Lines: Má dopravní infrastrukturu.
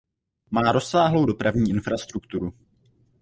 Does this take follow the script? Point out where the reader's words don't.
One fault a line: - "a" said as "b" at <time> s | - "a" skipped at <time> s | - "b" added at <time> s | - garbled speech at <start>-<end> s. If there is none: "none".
- "rozsáhlou" added at 0.7 s